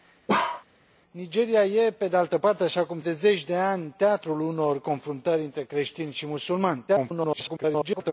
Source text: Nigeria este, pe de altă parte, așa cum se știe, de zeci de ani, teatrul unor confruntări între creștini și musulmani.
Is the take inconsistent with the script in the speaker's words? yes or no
yes